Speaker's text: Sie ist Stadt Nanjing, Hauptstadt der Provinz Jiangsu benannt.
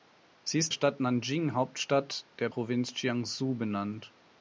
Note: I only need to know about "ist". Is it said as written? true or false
true